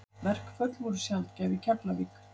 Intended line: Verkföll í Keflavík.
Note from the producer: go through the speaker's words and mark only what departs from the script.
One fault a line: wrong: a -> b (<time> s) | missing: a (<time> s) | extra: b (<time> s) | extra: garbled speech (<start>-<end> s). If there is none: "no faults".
extra: voru sjaldgæf (0.8 s)